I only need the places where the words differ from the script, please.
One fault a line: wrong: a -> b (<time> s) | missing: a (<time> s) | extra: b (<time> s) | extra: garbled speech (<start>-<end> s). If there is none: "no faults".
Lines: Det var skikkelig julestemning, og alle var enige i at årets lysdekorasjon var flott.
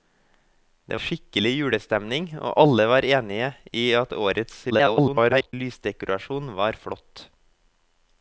missing: var (1.0 s)
extra: garbled speech (4.7-5.5 s)